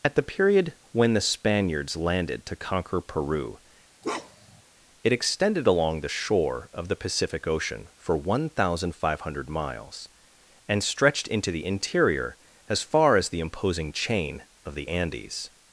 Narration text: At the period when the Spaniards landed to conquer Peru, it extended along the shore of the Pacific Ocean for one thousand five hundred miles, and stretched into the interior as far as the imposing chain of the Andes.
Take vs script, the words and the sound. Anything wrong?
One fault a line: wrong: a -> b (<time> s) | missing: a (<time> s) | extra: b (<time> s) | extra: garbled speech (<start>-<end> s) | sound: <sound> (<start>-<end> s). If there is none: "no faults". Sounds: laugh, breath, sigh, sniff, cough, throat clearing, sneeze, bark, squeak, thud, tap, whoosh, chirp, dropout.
sound: bark (4.0-4.6 s)